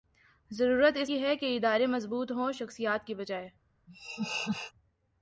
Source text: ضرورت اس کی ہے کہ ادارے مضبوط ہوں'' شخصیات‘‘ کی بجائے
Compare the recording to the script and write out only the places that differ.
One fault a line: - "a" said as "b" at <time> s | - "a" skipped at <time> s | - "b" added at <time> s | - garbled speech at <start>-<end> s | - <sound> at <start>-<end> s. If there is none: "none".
- laugh at 3.9-4.7 s